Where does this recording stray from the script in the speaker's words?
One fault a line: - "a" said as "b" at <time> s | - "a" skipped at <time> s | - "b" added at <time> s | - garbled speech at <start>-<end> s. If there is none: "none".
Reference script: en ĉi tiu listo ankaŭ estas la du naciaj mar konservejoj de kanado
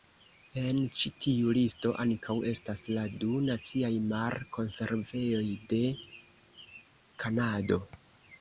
none